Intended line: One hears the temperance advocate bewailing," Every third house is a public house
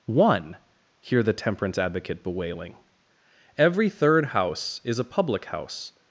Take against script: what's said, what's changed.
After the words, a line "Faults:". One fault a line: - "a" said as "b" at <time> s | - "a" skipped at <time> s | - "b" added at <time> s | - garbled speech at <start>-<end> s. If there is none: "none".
One hear the temperance advocate bewailing," Every third house is a public house
Faults:
- "hears" said as "hear" at 1.0 s